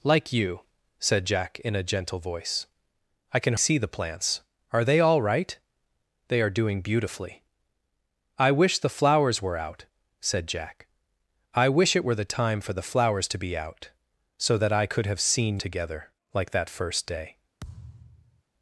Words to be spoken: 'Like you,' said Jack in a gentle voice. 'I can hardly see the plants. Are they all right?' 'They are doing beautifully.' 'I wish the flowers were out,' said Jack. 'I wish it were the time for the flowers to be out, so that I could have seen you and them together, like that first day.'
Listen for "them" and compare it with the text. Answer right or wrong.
wrong